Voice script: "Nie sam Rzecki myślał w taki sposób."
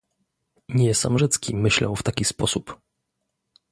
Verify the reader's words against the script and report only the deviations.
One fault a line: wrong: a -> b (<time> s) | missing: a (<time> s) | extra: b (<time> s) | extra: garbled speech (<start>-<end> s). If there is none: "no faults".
no faults